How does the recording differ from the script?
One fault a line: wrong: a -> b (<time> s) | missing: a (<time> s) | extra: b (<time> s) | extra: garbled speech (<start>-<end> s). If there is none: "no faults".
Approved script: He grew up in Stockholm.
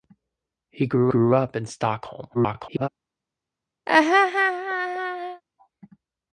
extra: grew (1.1 s)
extra: garbled speech (2.3-2.9 s)